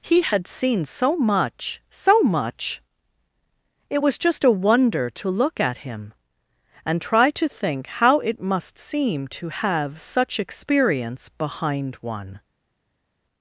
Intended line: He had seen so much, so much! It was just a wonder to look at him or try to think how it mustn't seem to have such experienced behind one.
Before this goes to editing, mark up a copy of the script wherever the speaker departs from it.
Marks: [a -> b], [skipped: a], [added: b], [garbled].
He had seen so much, so much! It was just a wonder to look at him [or -> and] try to think how it [mustn't -> must] seem to have such [experienced -> experience] behind one.